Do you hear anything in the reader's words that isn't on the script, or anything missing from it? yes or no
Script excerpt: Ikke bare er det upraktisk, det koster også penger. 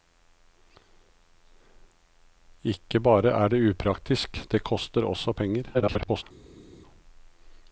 yes